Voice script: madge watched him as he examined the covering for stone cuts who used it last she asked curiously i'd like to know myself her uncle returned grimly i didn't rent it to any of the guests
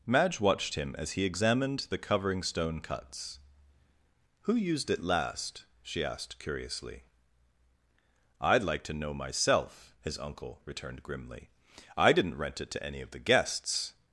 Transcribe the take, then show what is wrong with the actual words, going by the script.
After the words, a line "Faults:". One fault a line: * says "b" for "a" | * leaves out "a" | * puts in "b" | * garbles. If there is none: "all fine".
madge watched him as he examined the covering stone cuts who used it last she asked curiously i'd like to know myself his uncle returned grimly i didn't rent it to any of the guests
Faults:
* leaves out "for"
* says "his" for "her"